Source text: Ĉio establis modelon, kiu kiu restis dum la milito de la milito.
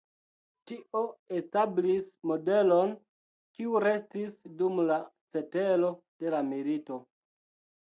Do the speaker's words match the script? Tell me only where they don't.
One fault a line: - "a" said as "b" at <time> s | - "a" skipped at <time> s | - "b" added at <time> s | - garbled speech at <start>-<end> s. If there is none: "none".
- "Ĉio" said as "Tio" at 0.7 s
- "kiu" skipped at 3.8 s
- "milito" said as "cetero" at 5.4 s